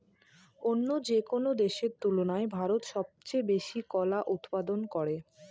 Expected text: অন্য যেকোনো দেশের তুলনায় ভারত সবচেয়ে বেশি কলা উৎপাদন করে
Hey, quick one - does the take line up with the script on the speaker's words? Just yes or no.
yes